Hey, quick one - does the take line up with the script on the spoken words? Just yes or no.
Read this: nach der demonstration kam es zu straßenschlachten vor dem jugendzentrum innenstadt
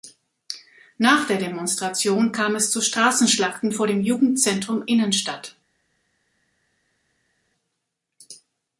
yes